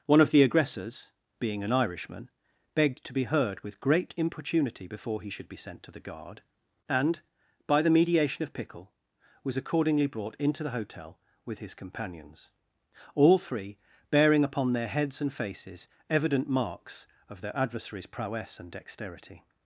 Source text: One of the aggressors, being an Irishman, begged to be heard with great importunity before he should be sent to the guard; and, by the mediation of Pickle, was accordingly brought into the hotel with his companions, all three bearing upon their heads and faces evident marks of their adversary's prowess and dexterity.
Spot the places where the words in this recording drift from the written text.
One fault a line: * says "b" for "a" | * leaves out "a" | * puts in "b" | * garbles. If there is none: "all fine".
all fine